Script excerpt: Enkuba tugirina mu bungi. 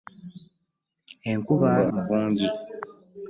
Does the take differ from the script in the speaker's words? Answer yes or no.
yes